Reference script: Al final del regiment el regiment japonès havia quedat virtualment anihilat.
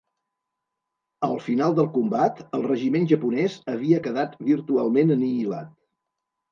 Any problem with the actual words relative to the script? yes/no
yes